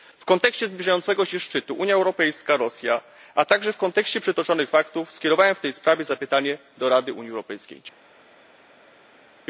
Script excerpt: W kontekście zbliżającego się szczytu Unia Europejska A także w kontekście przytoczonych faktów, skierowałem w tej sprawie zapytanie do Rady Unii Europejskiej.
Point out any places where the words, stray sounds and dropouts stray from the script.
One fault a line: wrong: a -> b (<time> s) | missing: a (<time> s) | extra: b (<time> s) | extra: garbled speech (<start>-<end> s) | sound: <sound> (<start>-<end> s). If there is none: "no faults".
extra: Rosja (2.6 s)